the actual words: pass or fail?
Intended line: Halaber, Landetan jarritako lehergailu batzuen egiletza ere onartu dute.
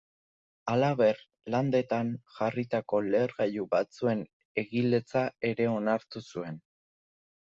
fail